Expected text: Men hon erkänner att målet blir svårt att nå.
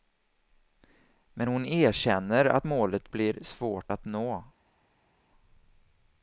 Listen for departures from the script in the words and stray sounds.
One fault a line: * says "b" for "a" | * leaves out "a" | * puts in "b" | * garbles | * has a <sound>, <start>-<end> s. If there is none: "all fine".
all fine